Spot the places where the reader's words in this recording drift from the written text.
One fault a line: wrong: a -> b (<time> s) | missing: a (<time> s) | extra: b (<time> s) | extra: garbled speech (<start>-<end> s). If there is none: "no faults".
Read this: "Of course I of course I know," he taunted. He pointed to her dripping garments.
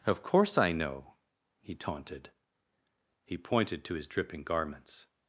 missing: of course I (0.7 s)
wrong: her -> his (3.9 s)